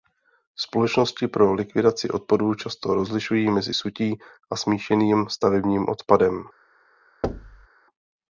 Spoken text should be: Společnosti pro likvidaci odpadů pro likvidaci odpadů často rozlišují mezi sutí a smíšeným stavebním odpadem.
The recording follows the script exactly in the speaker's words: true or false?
false